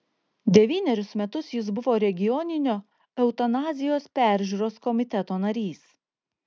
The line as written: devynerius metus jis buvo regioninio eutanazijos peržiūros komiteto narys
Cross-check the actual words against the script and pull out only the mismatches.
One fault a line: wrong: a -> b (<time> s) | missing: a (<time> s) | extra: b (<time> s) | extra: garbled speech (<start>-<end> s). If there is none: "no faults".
no faults